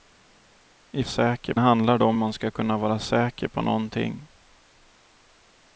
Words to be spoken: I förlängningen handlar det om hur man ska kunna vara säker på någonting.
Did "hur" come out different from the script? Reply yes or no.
yes